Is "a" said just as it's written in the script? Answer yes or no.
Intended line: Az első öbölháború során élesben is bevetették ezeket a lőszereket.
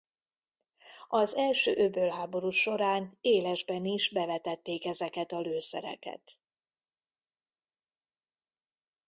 yes